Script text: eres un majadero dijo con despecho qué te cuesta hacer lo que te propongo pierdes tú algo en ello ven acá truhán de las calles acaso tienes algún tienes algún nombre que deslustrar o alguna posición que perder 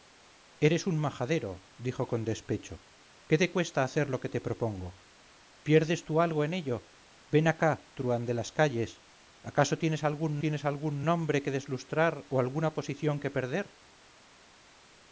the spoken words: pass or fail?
pass